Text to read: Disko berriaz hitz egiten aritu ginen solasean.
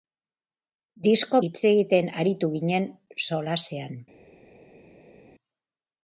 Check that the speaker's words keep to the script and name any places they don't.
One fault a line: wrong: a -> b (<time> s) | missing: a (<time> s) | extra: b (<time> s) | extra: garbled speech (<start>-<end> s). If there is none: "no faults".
missing: berriaz (1.4 s)